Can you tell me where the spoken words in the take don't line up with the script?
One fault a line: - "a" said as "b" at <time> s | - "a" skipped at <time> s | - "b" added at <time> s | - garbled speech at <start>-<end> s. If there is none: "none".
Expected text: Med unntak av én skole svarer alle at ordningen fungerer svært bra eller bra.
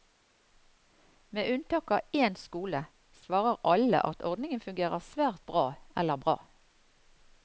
none